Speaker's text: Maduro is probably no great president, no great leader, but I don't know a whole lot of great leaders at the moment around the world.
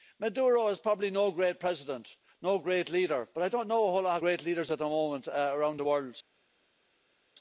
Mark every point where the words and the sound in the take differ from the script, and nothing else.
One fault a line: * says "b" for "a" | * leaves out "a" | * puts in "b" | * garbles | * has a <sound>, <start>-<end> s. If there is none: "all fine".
all fine